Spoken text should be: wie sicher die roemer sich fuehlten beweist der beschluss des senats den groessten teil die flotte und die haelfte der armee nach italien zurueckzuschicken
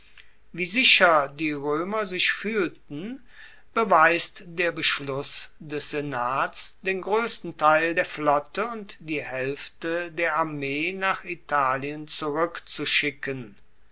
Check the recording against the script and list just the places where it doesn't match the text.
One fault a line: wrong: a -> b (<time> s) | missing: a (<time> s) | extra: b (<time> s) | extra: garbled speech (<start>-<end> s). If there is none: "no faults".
wrong: die -> der (7.9 s)